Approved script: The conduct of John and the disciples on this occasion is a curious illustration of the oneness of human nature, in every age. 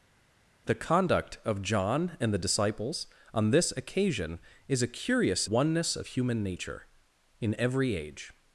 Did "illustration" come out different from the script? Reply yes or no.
yes